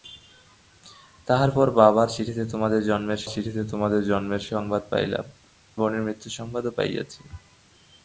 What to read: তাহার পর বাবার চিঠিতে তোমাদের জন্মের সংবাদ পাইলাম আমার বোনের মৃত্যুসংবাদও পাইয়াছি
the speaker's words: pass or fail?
fail